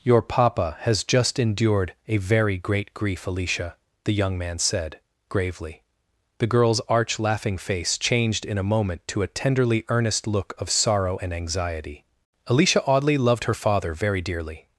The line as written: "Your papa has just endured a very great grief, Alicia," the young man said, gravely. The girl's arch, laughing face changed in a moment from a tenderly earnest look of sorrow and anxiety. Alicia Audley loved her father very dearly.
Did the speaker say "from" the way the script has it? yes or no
no